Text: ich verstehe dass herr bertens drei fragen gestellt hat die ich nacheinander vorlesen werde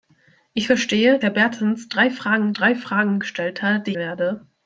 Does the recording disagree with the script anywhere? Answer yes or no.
yes